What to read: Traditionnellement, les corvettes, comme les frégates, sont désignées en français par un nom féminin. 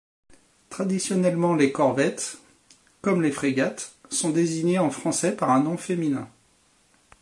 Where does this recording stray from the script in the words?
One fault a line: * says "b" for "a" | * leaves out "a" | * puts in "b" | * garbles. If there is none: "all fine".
all fine